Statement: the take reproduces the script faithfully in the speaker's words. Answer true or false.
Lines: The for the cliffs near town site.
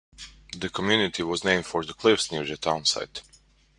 false